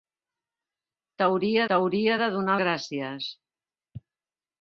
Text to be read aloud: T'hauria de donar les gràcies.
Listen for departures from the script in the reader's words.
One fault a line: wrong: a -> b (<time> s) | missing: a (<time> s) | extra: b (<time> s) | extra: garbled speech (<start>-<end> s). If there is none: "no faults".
extra: t'hauria (1.7 s)
missing: les (2.6 s)